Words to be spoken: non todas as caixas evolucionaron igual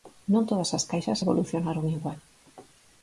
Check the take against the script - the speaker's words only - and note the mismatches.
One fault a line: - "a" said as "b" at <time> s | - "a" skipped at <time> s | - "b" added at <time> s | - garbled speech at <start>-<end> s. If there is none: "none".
none